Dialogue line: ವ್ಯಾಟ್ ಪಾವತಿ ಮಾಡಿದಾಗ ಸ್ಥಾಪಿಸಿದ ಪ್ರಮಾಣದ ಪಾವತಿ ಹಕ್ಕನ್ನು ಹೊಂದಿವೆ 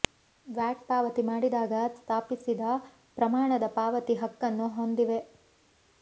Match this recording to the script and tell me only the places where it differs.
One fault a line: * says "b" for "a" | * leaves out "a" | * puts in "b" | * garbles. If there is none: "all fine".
all fine